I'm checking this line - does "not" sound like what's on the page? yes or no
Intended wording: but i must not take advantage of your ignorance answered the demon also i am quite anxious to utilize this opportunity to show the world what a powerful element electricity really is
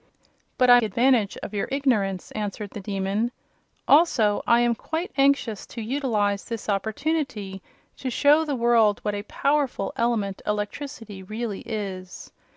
no